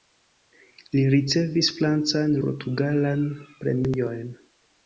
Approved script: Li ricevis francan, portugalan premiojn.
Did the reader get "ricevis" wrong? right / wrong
right